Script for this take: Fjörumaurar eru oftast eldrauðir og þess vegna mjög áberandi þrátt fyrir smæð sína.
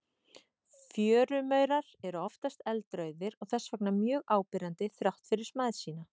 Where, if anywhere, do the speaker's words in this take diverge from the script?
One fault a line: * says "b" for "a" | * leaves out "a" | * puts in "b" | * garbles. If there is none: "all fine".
all fine